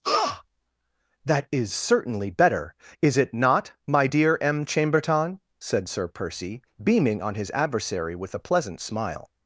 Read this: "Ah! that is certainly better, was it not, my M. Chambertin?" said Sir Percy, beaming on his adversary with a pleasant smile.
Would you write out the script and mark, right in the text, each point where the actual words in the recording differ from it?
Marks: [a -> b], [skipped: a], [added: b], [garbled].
"Ah! that is certainly better, [was -> is] it not, my [added: dear] M. Chambertin?" said Sir Percy, beaming on his adversary with a pleasant smile.